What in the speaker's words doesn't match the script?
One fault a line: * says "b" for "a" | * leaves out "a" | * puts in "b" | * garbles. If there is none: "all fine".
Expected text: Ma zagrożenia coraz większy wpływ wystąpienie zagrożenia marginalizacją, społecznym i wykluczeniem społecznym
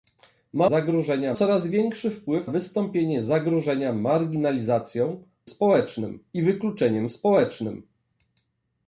all fine